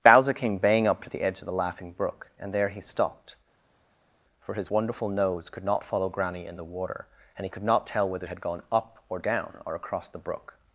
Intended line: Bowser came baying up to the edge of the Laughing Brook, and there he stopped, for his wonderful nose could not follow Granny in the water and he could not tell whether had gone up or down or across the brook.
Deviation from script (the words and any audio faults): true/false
false